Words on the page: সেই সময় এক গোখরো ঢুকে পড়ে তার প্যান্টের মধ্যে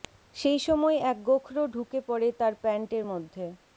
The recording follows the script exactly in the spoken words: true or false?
true